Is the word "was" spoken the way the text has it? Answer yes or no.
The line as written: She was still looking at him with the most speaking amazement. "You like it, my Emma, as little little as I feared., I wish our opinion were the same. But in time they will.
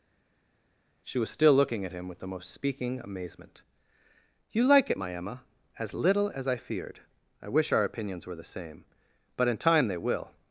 yes